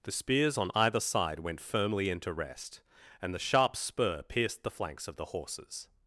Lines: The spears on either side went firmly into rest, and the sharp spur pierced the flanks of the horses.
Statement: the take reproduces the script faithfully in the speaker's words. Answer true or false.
true